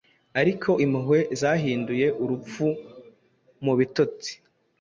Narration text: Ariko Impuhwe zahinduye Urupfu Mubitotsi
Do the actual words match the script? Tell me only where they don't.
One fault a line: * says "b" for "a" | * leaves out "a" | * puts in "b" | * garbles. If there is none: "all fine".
all fine